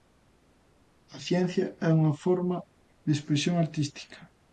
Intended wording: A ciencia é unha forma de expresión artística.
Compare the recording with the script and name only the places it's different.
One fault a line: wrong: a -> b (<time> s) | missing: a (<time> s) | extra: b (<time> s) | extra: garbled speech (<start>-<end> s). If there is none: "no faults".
no faults